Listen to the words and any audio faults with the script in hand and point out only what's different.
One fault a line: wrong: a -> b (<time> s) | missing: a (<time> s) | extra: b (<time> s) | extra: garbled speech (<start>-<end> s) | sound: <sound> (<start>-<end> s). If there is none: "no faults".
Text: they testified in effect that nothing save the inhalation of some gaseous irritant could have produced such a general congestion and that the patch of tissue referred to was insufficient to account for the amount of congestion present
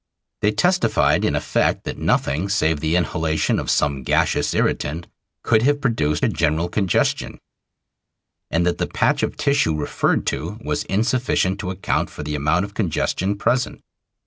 missing: such (6.2 s)